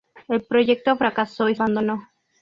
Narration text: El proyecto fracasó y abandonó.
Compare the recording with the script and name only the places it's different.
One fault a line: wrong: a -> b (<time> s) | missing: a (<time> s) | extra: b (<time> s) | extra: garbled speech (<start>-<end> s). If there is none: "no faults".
no faults